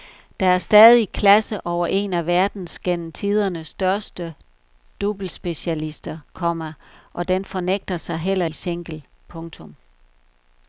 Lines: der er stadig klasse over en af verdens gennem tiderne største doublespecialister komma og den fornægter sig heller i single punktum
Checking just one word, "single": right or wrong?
right